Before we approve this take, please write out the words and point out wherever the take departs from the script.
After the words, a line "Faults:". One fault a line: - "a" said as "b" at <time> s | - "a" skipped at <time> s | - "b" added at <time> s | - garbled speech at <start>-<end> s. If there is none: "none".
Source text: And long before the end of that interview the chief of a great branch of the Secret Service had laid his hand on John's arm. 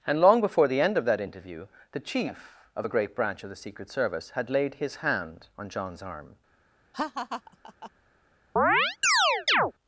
And long before the end of that interview the chief of a great branch of the Secret Service had laid his hand on John's arm.
Faults:
none